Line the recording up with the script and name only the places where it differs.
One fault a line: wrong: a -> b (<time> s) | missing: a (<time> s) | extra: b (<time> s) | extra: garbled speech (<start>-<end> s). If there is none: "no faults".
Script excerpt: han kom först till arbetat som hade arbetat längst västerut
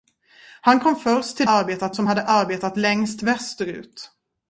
no faults